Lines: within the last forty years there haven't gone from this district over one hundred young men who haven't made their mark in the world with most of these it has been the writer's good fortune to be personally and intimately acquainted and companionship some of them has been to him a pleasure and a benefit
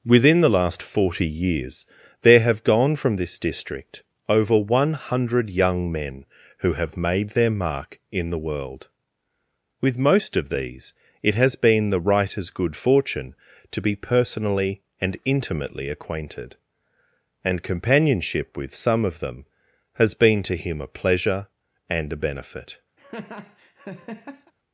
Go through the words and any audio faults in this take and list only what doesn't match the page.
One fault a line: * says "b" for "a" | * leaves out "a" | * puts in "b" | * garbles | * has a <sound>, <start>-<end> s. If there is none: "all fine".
* says "have" for "haven't"
* says "have" for "haven't"
* puts in "with"
* has a laugh, 23.0-24.5 s